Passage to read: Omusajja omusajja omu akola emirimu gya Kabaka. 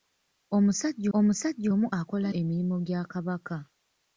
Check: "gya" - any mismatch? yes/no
no